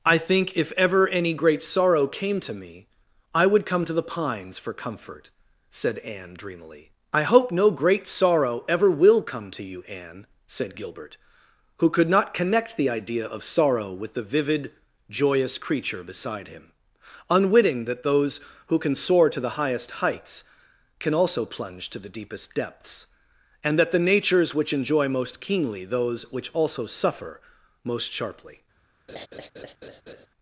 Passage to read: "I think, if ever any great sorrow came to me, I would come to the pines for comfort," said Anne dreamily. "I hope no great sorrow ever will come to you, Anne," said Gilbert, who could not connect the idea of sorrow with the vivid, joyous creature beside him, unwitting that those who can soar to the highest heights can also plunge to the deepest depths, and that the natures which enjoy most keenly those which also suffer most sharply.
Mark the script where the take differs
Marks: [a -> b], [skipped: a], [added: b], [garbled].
"I think, if ever any great sorrow came to me, I would come to the pines for comfort," said Anne dreamily. "I hope no great sorrow ever will come to you, Anne," said Gilbert, who could not connect the idea of sorrow with the vivid, joyous creature beside him, unwitting that those who can soar to the highest heights can also plunge to the deepest depths, and that the natures which enjoy most keenly those which also suffer most sharply.